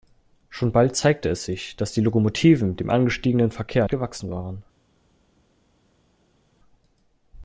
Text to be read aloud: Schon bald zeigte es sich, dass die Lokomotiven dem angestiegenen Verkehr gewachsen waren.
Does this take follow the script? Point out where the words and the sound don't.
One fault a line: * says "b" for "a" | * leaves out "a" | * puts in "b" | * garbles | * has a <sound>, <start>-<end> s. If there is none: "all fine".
all fine